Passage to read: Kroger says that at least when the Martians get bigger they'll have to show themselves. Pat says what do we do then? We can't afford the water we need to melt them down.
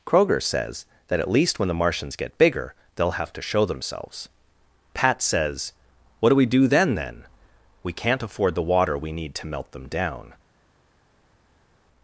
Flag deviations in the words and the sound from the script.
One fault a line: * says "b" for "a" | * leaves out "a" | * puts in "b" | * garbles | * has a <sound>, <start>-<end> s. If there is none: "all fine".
* puts in "then"